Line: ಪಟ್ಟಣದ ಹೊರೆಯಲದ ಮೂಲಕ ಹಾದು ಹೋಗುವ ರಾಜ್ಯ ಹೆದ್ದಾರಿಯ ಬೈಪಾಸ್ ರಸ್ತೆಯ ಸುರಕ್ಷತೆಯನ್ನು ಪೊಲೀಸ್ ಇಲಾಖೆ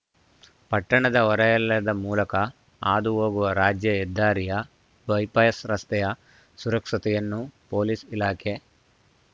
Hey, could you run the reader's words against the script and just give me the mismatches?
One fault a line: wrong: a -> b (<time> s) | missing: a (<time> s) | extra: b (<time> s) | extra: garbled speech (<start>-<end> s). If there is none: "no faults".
no faults